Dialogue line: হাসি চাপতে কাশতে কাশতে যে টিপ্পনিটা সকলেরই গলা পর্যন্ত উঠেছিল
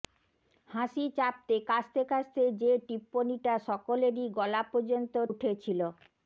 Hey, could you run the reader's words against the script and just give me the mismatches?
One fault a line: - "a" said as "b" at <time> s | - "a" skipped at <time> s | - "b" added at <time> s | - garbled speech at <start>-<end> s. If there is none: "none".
none